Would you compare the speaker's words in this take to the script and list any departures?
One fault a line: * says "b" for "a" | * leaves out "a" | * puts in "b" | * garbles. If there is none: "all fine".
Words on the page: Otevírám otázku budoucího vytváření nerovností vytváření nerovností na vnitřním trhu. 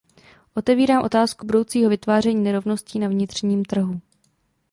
* leaves out "vytváření nerovností"